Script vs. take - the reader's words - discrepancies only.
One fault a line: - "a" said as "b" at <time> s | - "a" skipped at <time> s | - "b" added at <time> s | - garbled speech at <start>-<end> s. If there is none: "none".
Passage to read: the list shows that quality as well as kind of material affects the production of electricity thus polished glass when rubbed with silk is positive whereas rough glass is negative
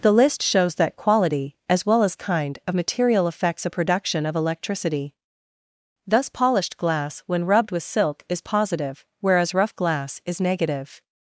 - "the" said as "a" at 3.7 s